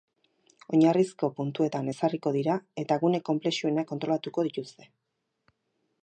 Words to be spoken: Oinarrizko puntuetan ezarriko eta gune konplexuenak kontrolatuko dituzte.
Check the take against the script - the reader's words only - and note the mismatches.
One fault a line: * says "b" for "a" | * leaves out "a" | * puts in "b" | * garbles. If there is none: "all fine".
* puts in "dira"